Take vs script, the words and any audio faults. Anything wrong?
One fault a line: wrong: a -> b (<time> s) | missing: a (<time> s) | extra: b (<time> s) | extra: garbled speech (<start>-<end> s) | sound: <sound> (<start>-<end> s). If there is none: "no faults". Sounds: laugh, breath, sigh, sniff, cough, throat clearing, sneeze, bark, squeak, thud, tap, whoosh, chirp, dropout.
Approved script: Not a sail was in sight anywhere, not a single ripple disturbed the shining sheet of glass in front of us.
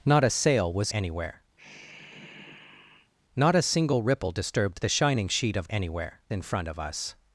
missing: in sight (0.9 s)
sound: sigh (1.6-3.1 s)
wrong: glass -> anywhere (5.7 s)